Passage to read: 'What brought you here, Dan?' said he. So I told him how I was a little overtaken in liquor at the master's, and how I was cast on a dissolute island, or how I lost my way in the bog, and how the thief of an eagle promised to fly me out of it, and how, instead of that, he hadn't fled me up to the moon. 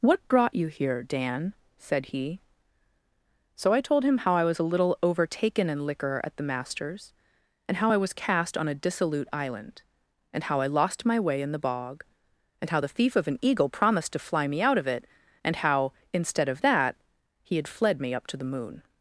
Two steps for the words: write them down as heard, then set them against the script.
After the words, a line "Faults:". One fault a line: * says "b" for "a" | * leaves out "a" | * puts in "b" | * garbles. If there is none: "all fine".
'What brought you here, Dan?' said he. So I told him how I was a little overtaken in liquor at the master's, and how I was cast on a dissolute island, and how I lost my way in the bog, and how the thief of an eagle promised to fly me out of it, and how, instead of that, he had fled me up to the moon.
Faults:
* says "and" for "or"
* says "had" for "hadn't"